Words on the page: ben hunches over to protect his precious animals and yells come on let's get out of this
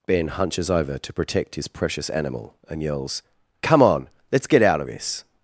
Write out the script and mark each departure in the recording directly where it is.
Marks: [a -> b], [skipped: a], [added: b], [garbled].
ben hunches over to protect his precious [animals -> animal] and yells come on let's get out of this